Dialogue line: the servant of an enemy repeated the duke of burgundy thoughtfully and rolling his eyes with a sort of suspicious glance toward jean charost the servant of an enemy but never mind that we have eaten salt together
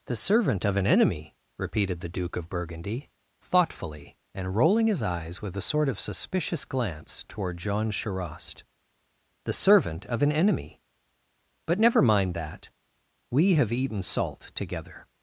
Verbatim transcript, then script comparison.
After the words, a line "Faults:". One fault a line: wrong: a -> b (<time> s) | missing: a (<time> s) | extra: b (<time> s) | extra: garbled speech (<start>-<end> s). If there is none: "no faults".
the servant of an enemy repeated the duke of burgundy thoughtfully and rolling his eyes with a sort of suspicious glance toward jean charost the servant of an enemy but never mind that we have eaten salt together
Faults:
no faults